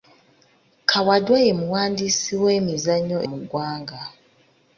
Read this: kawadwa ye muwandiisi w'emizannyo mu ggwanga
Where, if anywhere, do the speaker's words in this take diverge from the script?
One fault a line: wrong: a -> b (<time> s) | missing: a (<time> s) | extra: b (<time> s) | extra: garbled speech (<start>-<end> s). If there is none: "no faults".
no faults